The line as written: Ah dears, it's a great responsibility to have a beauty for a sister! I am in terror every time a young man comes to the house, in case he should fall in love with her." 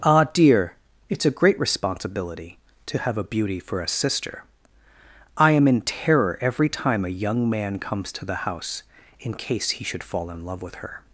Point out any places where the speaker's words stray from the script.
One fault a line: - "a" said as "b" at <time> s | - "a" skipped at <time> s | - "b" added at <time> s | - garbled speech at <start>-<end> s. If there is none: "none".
- "dears" said as "dear" at 0.3 s